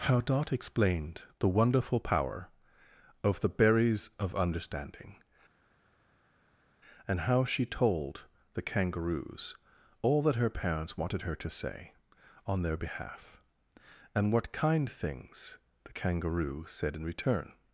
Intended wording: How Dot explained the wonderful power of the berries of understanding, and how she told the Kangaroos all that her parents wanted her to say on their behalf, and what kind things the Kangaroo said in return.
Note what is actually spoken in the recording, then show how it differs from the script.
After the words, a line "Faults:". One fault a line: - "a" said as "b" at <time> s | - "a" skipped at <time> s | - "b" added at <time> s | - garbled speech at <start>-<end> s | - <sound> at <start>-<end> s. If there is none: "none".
How Dot explained the wonderful power of the berries of understanding, and how she told the Kangaroos all that her parents wanted her to say on their behalf, and what kind things the Kangaroo said in return.
Faults:
none